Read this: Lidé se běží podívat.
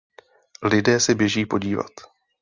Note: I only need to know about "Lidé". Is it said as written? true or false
true